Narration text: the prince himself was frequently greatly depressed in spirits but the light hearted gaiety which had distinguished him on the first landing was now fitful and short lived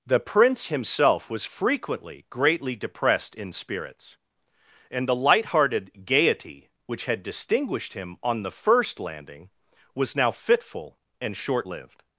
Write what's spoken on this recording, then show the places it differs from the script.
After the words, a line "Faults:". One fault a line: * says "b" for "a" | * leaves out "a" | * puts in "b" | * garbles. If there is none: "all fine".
the prince himself was frequently greatly depressed in spirits and the light hearted gaiety which had distinguished him on the first landing was now fitful and short lived
Faults:
* says "and" for "but"